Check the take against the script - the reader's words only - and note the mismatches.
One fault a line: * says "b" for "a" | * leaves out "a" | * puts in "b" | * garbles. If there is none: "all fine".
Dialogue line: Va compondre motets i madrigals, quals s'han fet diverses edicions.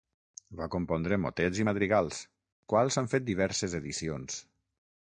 all fine